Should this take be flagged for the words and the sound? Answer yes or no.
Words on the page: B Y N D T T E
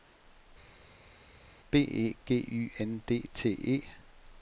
yes